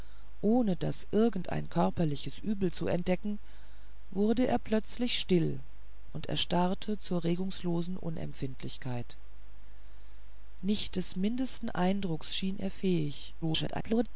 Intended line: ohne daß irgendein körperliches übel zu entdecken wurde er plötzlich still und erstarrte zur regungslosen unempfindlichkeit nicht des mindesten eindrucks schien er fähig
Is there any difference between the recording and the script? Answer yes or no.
yes